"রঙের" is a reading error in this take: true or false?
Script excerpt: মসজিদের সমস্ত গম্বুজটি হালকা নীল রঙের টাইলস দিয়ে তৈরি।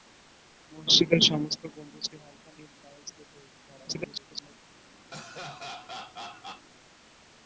true